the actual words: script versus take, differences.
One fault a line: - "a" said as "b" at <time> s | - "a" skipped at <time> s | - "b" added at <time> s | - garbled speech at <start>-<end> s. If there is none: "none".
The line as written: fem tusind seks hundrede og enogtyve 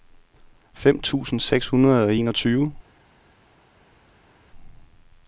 none